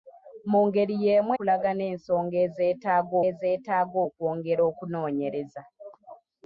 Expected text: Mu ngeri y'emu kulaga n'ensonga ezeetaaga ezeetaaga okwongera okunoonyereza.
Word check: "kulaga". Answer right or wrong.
right